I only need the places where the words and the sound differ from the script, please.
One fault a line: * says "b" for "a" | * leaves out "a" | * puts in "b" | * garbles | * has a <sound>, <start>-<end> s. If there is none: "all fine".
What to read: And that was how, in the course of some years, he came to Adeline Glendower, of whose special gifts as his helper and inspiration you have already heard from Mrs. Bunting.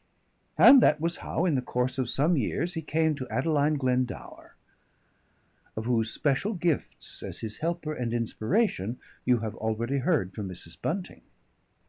all fine